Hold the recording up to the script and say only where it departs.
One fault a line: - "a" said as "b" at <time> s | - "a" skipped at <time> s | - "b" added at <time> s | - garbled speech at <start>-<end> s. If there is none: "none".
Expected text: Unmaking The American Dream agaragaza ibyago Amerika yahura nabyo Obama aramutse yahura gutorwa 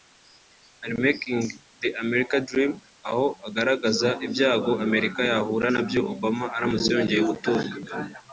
- "aho" added at 3.1 s
- "yahura" said as "yongeye" at 7.0 s